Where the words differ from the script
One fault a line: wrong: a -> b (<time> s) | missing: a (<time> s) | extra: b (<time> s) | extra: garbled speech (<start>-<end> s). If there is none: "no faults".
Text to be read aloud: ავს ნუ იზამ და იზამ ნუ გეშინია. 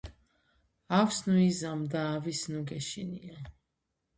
wrong: იზამ -> ავის (2.1 s)